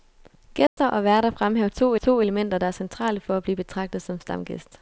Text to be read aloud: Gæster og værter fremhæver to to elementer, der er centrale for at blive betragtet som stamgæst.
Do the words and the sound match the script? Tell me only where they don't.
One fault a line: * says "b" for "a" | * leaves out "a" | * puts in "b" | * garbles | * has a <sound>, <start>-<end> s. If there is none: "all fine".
* has a dropout, 0.7-0.8 s